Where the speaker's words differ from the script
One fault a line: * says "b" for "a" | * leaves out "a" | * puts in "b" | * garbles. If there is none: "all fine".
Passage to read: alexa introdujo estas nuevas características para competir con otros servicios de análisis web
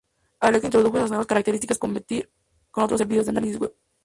* leaves out "para"